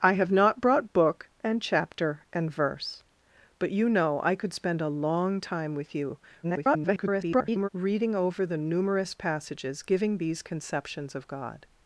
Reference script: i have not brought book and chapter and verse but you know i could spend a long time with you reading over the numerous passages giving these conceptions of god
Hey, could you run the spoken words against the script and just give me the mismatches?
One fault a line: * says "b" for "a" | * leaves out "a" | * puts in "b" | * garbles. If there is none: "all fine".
* garbles